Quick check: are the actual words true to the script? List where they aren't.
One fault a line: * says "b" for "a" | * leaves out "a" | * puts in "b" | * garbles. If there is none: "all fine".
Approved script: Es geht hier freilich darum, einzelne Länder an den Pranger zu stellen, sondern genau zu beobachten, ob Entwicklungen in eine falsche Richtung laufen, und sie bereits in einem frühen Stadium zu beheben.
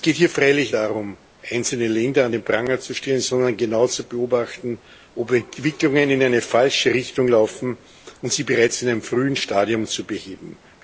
all fine